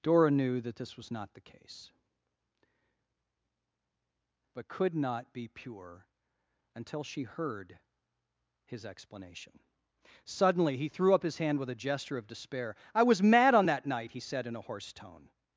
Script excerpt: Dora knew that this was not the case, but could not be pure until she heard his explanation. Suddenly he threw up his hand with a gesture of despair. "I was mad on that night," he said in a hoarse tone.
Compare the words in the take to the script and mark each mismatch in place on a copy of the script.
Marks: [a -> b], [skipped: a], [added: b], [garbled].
Dora knew that this was not the case, but could not be pure until she heard his explanation. Suddenly he threw up his hand with a gesture of despair. "I was mad on that night," he said in a hoarse tone.